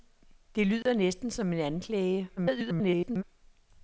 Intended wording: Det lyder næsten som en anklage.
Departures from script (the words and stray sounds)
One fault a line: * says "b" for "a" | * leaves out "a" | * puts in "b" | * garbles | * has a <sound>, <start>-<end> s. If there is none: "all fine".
* has a dropout, 0.8-0.9 s
* garbles